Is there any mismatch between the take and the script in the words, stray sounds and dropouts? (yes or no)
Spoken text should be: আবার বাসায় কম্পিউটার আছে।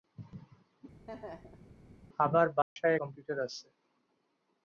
yes